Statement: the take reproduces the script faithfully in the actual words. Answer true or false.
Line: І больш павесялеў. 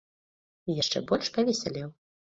false